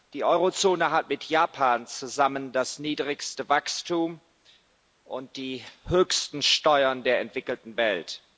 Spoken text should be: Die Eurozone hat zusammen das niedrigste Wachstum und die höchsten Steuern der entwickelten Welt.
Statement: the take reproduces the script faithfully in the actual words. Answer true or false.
false